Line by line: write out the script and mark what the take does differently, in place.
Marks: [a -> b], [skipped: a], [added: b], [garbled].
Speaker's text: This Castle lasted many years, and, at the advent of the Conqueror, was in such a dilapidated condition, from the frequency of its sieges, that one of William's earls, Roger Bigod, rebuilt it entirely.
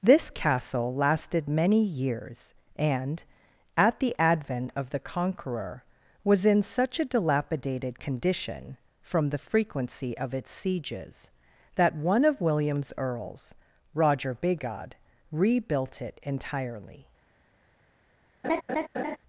This Castle lasted many years, and, at the advent of the Conqueror, was in such a dilapidated condition, from the frequency of its sieges, that one of William's earls, Roger Bigod, rebuilt it entirely.